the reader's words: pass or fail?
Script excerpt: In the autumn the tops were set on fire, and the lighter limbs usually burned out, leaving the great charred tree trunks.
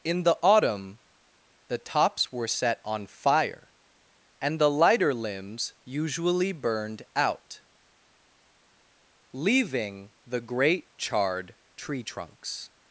pass